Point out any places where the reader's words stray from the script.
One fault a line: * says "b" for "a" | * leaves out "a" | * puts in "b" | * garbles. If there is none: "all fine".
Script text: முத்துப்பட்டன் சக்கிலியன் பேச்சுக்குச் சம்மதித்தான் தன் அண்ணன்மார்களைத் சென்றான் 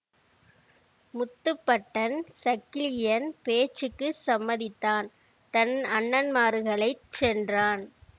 all fine